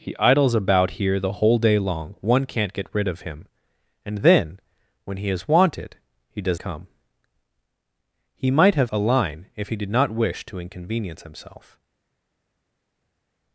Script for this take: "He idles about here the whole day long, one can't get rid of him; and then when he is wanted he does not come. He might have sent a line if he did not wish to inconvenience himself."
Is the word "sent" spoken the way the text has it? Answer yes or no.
no